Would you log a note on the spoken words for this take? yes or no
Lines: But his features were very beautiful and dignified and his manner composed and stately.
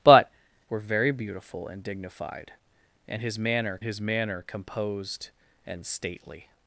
yes